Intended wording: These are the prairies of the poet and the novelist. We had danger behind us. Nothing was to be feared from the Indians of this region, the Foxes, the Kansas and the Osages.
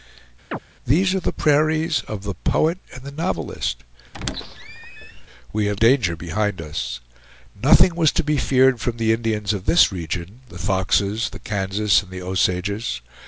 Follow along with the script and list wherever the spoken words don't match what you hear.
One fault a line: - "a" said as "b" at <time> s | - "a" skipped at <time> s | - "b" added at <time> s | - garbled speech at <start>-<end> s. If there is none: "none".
none